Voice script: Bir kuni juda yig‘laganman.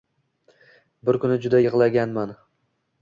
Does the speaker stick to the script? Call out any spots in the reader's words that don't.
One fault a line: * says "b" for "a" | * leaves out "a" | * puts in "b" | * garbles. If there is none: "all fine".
all fine